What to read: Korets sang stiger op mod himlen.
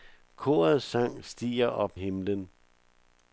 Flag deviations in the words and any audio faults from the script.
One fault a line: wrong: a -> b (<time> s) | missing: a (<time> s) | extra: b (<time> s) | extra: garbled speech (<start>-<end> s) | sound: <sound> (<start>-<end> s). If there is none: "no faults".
missing: mod (2.0 s)